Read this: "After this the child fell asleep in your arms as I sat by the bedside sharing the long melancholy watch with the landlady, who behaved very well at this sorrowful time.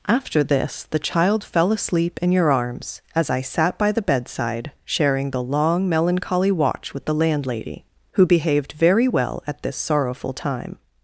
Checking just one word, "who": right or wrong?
right